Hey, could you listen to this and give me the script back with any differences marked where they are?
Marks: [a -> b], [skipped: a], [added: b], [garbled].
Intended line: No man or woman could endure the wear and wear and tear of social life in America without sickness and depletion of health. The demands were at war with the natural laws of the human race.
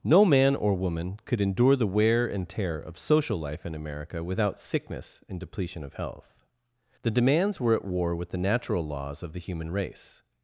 No man or woman could endure the wear and [skipped: wear and] tear of social life in America without sickness and depletion of health. The demands were at war with the natural laws of the human race.